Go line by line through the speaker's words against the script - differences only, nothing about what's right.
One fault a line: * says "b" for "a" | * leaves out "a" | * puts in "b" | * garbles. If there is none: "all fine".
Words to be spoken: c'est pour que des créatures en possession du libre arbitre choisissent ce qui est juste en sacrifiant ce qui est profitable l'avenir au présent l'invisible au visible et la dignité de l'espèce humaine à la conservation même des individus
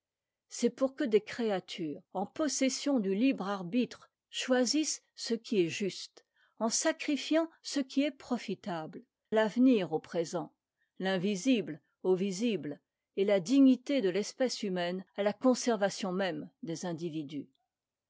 all fine